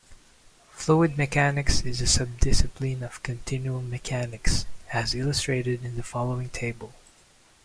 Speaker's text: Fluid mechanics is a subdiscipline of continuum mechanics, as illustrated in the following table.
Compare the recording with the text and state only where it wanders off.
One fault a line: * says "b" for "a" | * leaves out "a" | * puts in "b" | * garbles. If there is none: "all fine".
all fine